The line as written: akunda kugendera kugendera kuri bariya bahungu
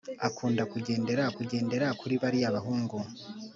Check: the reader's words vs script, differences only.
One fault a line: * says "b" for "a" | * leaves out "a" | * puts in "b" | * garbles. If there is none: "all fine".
all fine